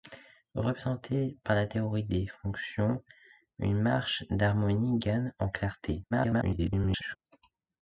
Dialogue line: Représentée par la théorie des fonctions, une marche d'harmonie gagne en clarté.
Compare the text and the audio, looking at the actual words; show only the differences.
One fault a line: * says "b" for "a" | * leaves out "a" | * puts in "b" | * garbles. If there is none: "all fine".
* garbles